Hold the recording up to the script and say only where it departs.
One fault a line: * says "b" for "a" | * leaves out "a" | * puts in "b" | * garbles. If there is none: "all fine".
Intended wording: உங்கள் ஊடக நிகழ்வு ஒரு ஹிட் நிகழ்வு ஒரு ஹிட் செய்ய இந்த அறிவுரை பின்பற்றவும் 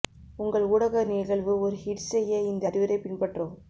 * leaves out "நிகழ்வு ஒரு ஹிட்"